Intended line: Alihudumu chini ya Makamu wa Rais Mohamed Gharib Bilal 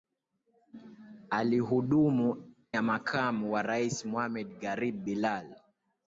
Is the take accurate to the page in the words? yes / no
no